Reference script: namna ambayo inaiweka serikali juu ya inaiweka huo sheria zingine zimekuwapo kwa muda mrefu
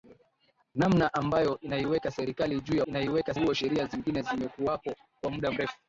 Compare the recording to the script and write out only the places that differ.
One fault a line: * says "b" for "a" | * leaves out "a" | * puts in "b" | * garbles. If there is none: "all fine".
all fine